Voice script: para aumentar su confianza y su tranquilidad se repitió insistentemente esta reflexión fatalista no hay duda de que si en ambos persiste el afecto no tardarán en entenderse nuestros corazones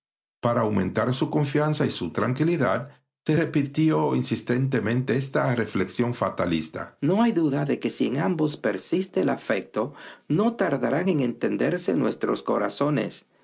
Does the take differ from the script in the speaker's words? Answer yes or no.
no